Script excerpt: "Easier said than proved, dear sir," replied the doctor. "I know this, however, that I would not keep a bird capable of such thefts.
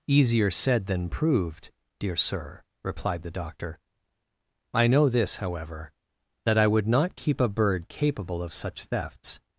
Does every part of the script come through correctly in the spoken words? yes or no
yes